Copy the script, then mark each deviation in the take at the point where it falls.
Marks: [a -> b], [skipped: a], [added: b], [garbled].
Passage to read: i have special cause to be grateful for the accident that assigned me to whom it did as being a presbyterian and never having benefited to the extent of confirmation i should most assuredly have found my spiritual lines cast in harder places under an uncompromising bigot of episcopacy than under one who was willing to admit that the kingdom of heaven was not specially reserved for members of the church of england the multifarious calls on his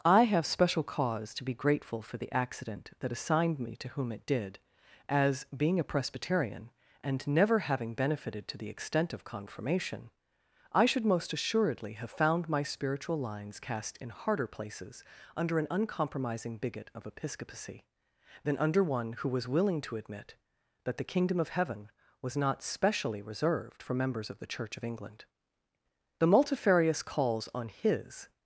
i have special cause to be grateful for the accident that assigned me to whom it did as being a presbyterian and never having benefited to the extent of confirmation i should most assuredly have found my spiritual lines cast in harder places under an uncompromising bigot of episcopacy than under one who was willing to admit that the kingdom of heaven was not specially reserved for members of the church of england the multifarious calls on his